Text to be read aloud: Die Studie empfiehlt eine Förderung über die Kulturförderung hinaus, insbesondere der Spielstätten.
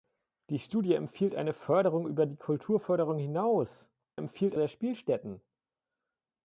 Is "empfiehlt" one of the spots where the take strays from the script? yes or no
no